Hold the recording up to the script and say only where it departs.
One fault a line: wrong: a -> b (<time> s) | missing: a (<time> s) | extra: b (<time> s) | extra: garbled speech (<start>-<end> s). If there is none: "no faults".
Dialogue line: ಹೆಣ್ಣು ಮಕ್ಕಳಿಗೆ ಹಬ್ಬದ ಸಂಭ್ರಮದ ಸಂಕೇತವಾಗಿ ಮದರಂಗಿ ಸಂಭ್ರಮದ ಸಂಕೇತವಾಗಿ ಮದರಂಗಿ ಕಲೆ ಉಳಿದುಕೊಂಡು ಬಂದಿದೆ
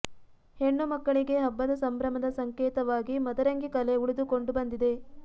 missing: ಸಂಭ್ರಮದ ಸಂಕೇತವಾಗಿ ಮದರಂಗಿ (3.7 s)